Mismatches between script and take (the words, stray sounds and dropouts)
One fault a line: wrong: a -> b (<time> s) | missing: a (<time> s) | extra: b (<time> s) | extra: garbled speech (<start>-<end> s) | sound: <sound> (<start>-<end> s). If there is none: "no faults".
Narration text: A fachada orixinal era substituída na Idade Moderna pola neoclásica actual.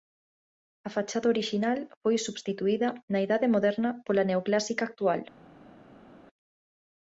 wrong: era -> foi (2.0 s)